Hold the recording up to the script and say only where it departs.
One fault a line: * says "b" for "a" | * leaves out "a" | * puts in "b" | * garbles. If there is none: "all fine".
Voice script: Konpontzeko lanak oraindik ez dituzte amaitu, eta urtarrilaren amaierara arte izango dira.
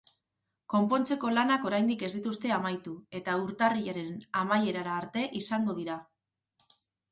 all fine